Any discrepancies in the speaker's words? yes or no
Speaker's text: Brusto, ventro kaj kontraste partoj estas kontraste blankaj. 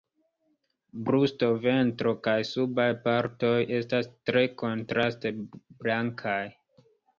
yes